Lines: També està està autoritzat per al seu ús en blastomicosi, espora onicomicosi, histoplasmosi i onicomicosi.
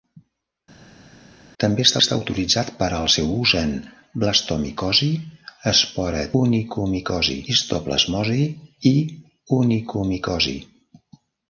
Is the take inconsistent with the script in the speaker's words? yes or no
no